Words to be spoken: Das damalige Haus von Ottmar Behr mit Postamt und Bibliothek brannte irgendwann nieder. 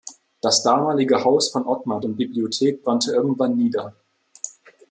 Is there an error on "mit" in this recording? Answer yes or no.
yes